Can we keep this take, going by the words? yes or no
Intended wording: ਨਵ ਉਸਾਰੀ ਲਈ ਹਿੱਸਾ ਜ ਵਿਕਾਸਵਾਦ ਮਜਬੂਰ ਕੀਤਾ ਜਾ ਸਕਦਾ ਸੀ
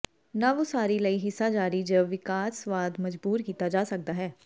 no